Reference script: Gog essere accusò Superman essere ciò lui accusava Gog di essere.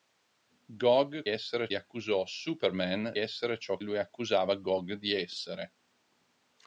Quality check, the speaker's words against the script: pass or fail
pass